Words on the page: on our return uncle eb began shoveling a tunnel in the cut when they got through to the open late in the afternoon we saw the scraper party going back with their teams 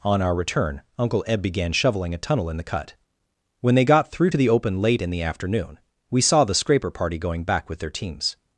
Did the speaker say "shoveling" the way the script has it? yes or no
yes